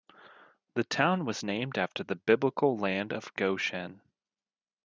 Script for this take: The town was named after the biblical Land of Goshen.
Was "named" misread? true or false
false